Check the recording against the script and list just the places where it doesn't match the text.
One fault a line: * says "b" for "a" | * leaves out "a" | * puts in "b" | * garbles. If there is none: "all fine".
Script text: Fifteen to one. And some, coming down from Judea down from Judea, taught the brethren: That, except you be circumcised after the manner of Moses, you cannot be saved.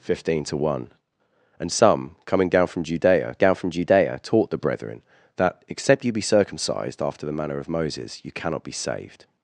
all fine